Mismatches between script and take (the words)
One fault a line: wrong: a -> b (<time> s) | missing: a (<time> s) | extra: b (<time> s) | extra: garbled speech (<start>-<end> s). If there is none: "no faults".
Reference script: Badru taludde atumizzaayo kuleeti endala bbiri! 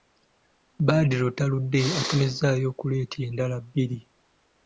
no faults